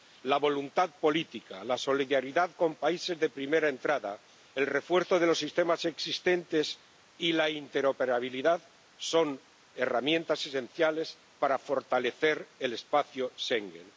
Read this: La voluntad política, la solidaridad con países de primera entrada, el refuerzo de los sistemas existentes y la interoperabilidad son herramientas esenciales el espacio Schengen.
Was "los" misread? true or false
false